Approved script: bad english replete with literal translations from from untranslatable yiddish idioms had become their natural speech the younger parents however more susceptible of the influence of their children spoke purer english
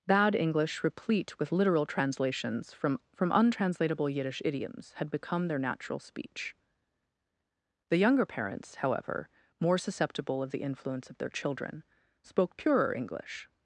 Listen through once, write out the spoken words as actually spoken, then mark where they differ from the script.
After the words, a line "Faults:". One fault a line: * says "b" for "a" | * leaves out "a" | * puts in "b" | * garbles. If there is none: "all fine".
bad english replete with literal translations from from untranslatable yiddish idioms had become their natural speech the younger parents however more susceptible of the influence of their children spoke purer english
Faults:
all fine